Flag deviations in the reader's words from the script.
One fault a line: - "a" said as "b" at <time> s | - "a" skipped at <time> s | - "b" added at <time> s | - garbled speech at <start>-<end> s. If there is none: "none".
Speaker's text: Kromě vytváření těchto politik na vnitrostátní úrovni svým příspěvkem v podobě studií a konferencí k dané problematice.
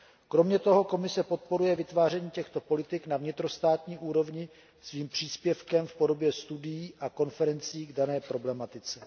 - "toho Komise podporuje" added at 0.6 s